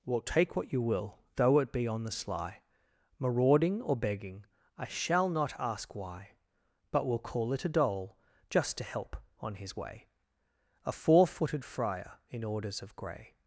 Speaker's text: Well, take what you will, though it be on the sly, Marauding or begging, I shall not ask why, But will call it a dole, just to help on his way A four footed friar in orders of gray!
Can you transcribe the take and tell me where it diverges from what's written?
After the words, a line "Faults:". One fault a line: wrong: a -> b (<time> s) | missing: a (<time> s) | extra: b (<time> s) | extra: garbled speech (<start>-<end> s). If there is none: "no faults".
Well, take what you will, though it be on the sly, Marauding or begging, I shall not ask why, But will call it a dole, just to help on his way A four footed friar in orders of gray!
Faults:
no faults